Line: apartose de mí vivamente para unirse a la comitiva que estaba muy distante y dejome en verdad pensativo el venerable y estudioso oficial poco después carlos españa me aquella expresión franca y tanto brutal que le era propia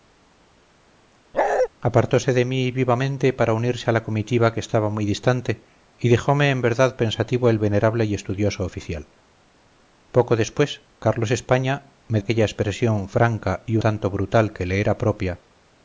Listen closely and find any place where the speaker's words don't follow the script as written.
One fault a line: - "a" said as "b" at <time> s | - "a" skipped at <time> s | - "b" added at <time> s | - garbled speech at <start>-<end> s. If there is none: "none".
none